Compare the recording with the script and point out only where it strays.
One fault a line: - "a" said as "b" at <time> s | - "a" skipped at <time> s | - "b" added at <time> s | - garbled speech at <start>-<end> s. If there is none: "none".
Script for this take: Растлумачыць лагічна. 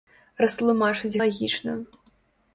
none